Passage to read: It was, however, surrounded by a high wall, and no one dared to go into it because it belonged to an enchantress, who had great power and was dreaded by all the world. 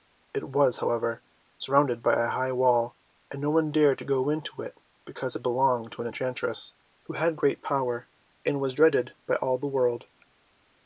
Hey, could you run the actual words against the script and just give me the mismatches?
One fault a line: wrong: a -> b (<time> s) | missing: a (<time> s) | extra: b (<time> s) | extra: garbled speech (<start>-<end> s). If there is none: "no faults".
no faults